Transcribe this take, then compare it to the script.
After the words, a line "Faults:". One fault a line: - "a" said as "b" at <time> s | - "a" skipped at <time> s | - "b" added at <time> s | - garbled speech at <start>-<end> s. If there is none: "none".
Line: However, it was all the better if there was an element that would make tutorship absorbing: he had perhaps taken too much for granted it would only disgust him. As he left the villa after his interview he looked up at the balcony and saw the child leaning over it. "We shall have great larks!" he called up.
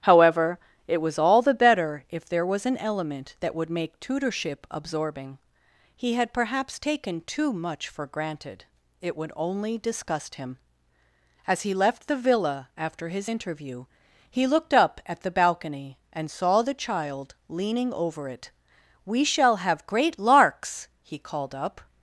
However, it was all the better if there was an element that would make tutorship absorbing: he had perhaps taken too much for granted it would only disgust him. As he left the villa after his interview he looked up at the balcony and saw the child leaning over it. "We shall have great larks!" he called up.
Faults:
none